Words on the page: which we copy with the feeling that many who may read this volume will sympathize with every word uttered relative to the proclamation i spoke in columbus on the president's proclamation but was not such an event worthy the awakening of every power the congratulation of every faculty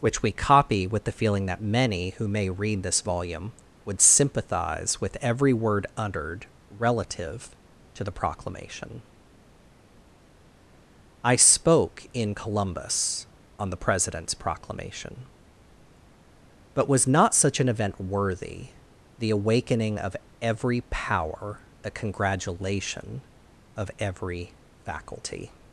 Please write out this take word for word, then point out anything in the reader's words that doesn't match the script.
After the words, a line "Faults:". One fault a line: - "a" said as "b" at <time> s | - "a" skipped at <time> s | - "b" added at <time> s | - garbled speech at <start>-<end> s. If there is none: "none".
which we copy with the feeling that many who may read this volume would sympathize with every word uttered relative to the proclamation i spoke in columbus on the president's proclamation but was not such an event worthy the awakening of every power the congratulation of every faculty
Faults:
- "will" said as "would" at 3.9 s